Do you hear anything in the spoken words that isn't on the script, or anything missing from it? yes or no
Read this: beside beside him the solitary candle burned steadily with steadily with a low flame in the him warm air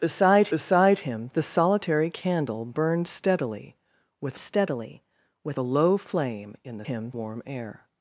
no